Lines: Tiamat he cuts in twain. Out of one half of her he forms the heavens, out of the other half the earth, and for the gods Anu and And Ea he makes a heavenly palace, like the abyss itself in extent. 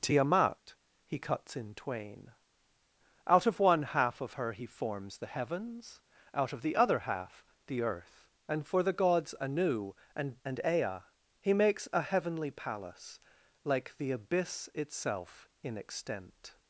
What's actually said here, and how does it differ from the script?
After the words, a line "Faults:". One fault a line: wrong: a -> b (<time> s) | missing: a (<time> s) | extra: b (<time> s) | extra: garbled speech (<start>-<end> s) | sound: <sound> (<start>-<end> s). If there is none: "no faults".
Tiamat he cuts in twain. Out of one half of her he forms the heavens, out of the other half the earth, and for the gods Anu and And Ea he makes a heavenly palace, like the abyss itself in extent.
Faults:
no faults